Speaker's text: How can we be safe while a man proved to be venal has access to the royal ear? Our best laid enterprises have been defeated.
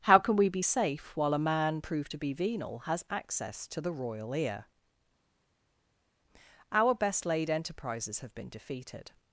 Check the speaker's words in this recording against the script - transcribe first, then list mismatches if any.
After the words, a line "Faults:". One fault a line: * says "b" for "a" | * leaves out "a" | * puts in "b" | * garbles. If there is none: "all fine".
How can we be safe while a man proved to be venal has access to the royal ear? Our best laid enterprises have been defeated.
Faults:
all fine